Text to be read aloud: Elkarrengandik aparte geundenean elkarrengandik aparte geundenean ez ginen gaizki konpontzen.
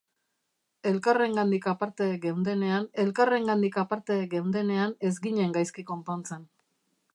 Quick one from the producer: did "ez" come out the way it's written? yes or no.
yes